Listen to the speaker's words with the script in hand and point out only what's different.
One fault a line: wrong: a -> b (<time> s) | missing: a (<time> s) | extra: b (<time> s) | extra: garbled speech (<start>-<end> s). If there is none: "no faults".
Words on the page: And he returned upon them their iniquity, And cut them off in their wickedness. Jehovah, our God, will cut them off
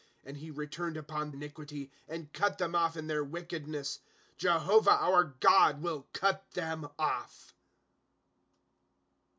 missing: them their (1.3 s)